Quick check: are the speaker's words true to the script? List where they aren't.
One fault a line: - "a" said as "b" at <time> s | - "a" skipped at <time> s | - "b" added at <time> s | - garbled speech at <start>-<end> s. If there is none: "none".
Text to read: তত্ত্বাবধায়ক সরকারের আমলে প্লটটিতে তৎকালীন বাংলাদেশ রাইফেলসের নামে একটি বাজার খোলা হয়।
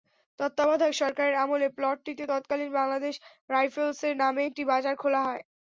none